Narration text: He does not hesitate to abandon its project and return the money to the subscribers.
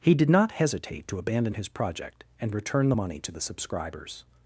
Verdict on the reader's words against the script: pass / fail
fail